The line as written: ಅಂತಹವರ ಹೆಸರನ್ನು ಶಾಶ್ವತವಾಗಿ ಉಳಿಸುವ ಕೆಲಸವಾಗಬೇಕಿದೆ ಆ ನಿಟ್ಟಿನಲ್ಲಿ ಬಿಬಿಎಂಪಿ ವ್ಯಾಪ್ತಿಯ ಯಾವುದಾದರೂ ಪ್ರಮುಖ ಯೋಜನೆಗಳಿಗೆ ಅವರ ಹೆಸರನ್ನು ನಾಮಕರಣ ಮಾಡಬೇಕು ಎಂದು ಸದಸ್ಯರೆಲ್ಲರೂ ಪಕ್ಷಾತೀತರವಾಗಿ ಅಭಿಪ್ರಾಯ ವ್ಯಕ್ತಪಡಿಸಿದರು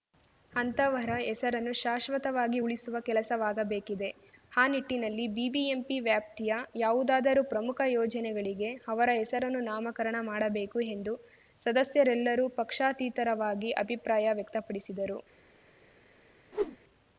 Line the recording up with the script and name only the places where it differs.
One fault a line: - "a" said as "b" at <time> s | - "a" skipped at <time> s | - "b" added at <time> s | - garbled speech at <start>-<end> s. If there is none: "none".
none